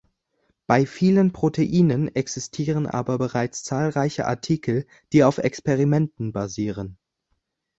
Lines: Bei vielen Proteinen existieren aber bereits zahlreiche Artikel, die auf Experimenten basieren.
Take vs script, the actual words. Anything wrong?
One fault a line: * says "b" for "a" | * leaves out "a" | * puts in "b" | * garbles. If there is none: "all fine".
all fine